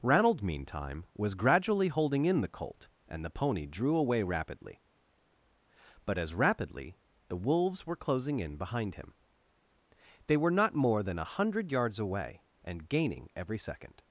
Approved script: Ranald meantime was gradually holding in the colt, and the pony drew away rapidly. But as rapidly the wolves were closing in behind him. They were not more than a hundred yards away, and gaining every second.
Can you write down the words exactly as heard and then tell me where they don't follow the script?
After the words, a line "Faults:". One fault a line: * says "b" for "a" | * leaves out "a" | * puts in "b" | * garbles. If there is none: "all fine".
Ranald meantime was gradually holding in the colt, and the pony drew away rapidly. But as rapidly the wolves were closing in behind him. They were not more than a hundred yards away, and gaining every second.
Faults:
all fine